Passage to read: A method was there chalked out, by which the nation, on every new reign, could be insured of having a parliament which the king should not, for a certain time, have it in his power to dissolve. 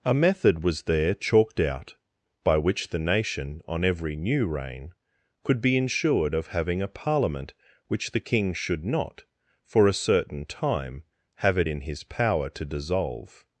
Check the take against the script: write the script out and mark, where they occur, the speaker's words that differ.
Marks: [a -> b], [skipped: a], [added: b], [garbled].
A method was there chalked out, by which the nation, on every new reign, could be insured of having a parliament which the king should not, for a certain time, have it in his power to dissolve.